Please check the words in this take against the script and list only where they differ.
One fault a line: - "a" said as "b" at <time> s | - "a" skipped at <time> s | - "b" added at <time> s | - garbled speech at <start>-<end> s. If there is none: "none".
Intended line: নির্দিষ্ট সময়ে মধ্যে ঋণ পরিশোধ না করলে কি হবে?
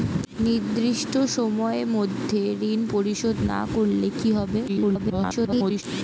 - garbled speech at 4.7-5.8 s